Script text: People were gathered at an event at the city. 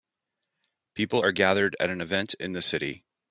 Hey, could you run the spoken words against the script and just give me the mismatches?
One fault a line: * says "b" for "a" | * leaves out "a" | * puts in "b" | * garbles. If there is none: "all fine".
* says "are" for "were"
* says "in" for "at"